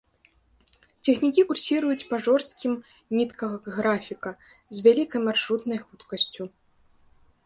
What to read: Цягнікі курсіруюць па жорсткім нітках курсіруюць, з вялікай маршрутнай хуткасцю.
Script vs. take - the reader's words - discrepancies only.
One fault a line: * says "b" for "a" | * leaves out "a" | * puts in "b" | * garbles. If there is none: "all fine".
* says "графіка" for "курсіруюць"